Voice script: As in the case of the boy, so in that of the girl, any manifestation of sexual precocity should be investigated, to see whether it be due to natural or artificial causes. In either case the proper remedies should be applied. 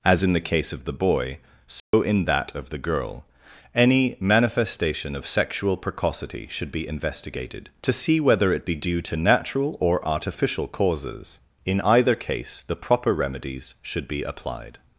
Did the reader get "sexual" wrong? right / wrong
right